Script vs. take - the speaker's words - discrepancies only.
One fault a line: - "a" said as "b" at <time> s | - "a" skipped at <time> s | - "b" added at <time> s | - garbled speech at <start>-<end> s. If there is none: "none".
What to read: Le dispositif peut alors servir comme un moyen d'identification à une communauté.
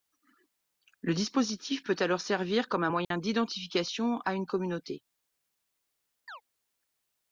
none